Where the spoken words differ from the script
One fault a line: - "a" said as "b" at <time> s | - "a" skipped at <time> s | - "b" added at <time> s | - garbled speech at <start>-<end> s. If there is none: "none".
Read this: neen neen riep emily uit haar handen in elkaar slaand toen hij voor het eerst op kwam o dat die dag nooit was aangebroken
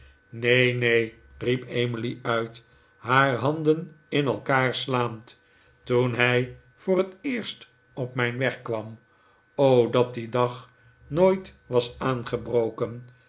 - "mijn weg" added at 8.1 s